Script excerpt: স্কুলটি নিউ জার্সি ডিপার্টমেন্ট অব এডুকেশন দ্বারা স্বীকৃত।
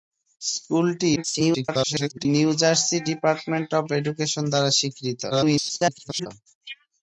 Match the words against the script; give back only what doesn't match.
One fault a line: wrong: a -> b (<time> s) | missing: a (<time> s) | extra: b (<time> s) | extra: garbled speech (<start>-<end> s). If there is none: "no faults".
extra: garbled speech (1.2-2.3 s)
extra: garbled speech (5.3-6.3 s)